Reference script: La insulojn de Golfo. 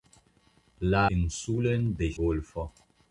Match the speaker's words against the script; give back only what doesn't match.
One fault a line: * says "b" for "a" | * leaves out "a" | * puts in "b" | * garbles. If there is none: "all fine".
all fine